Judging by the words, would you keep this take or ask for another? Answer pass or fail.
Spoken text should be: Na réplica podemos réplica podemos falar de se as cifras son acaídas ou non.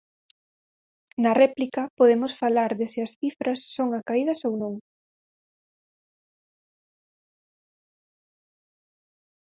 fail